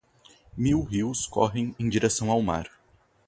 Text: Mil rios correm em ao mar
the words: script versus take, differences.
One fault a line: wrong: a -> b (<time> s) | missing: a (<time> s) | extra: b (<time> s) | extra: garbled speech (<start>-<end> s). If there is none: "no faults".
extra: direção (1.9 s)